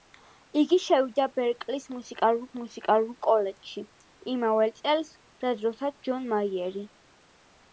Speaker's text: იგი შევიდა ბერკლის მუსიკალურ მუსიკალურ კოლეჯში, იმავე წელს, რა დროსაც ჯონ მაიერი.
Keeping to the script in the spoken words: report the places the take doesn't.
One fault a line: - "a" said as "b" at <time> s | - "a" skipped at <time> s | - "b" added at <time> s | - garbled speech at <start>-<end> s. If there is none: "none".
none